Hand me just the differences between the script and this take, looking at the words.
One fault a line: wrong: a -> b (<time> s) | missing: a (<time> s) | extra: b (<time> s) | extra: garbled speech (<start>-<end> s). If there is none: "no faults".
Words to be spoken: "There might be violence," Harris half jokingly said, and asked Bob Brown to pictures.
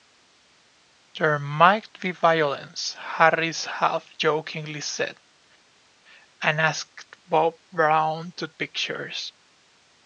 no faults